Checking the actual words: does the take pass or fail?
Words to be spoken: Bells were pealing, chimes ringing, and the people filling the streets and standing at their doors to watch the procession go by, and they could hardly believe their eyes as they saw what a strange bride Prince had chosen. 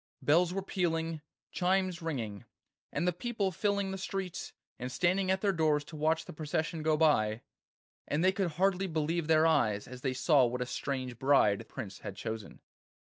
pass